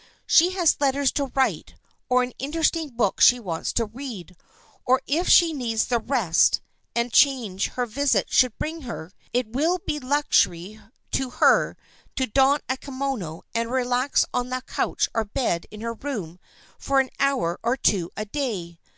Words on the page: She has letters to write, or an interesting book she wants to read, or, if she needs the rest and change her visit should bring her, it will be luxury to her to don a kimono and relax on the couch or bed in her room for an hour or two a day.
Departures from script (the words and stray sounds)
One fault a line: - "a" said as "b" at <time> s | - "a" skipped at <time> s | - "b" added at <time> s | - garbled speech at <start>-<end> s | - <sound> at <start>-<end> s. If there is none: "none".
none